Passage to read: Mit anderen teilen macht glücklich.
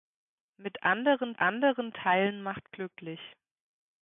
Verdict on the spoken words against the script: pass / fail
fail